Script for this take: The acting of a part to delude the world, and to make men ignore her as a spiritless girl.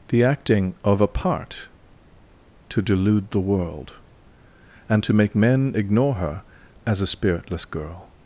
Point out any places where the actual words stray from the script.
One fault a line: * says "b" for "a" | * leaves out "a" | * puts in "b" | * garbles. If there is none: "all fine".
all fine